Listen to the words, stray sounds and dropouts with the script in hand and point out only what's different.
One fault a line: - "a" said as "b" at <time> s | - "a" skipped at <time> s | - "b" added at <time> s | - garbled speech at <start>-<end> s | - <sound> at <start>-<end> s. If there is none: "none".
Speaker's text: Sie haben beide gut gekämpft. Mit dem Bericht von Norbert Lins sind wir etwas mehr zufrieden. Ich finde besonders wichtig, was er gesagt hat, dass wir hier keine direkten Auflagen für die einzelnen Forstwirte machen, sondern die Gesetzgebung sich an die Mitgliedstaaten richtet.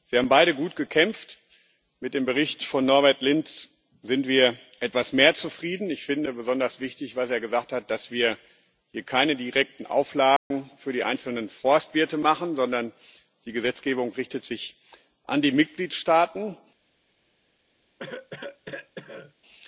- dropout at 10.4-10.5 s
- cough at 18.0-19.3 s